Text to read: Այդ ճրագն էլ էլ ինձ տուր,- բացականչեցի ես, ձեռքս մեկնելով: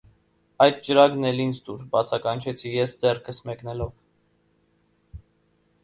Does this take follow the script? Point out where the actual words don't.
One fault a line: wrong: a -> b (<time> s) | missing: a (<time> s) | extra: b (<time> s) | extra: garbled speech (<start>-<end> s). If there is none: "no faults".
missing: էլ (1.4 s)